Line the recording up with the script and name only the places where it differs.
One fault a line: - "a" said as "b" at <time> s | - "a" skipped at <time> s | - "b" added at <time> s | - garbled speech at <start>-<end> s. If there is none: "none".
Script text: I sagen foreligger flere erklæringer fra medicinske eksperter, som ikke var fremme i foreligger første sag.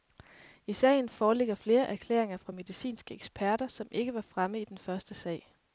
- "foreligger" said as "den" at 4.6 s